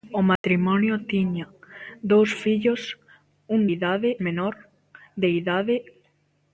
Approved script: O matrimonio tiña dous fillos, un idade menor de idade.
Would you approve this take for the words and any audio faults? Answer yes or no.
no